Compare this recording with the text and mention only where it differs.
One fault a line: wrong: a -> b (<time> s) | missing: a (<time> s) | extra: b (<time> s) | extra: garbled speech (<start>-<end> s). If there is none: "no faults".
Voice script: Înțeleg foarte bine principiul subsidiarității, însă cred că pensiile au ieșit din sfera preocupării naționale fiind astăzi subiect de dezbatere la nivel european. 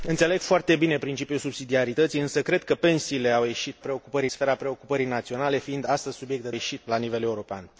wrong: din -> preocupării (3.8 s)
wrong: dezbatere -> ieșit (6.5 s)